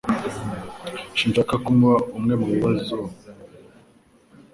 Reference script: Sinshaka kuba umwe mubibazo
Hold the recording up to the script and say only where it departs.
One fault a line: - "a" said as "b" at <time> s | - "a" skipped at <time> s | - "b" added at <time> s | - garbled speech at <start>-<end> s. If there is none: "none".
none